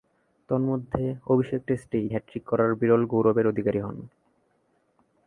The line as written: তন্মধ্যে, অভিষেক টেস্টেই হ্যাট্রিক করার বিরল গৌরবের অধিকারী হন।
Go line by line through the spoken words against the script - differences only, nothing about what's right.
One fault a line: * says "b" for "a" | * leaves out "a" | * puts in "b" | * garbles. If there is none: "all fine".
all fine